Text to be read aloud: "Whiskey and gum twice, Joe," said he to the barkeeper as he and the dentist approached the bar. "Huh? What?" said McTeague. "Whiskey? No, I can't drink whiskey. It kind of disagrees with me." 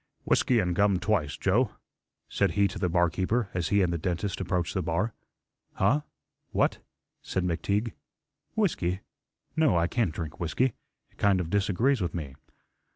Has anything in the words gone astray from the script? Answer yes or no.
no